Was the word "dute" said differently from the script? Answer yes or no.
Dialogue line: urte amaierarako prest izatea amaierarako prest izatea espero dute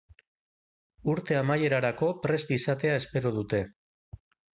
no